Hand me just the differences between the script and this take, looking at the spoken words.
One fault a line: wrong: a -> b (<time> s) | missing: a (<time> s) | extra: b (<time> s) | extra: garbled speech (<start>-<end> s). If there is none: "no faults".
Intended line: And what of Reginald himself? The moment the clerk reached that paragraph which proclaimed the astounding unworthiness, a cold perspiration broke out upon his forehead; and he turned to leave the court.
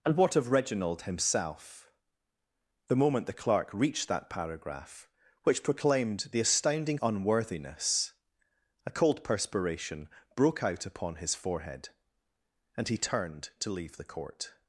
no faults